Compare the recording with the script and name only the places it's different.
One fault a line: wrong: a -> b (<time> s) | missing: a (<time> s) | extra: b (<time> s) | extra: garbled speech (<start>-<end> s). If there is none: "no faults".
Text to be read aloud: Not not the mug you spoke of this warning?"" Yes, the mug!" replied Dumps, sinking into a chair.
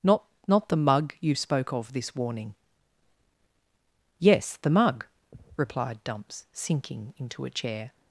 no faults